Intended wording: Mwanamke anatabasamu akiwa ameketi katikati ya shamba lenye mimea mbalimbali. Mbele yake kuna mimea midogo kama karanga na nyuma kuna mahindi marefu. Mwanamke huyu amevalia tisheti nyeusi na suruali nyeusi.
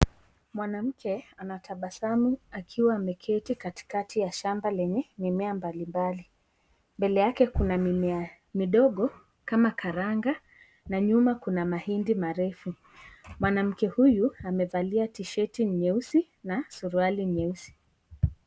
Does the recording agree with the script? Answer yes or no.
yes